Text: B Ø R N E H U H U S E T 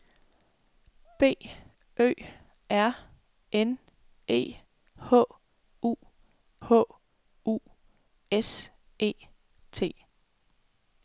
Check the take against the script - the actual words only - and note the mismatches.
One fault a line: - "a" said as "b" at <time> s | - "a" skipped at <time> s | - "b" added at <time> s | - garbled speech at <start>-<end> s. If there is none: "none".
none